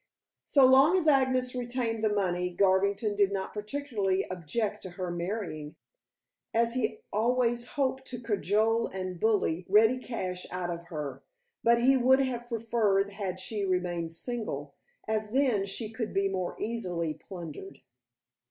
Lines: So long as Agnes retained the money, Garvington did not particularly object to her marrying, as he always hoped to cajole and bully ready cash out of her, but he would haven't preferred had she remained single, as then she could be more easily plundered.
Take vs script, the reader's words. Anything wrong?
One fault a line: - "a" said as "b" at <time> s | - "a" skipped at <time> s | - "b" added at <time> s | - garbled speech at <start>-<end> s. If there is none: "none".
- "haven't" said as "have" at 12.2 s